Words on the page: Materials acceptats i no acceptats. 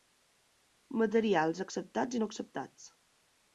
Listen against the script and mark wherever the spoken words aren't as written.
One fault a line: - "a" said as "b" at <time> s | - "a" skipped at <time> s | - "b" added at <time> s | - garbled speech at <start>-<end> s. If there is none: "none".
none